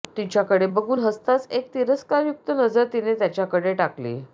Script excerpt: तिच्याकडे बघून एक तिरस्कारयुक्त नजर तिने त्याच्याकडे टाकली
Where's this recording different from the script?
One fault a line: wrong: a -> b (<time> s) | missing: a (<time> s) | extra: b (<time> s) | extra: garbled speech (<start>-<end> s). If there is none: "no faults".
extra: हसताच (1.0 s)